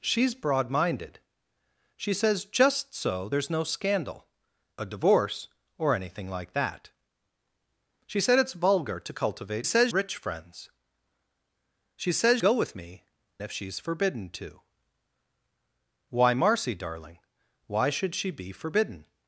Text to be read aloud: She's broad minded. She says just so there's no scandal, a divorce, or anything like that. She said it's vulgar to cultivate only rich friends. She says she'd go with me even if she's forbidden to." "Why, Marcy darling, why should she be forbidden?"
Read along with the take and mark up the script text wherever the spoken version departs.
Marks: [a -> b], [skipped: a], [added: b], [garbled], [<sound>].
She's broad minded. She says just so there's no scandal, a divorce, or anything like that. She said it's vulgar to cultivate [only -> says] rich friends. She says [skipped: she'd] go with me [skipped: even] if she's forbidden to." "Why, Marcy darling, why should she be forbidden?"